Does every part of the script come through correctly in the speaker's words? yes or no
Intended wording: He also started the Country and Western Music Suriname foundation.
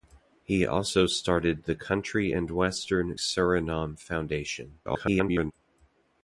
no